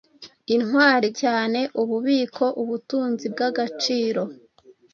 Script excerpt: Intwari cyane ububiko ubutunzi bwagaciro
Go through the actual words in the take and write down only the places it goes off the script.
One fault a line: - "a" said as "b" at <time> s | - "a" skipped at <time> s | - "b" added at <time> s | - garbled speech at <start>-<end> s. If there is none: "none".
none